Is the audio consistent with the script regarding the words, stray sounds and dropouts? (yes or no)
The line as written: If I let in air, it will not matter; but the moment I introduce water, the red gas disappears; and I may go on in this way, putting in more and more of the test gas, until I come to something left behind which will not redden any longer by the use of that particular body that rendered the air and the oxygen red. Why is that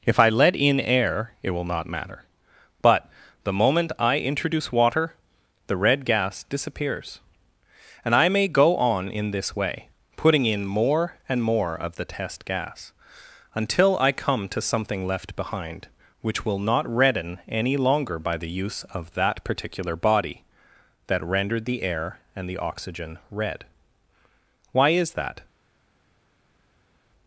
yes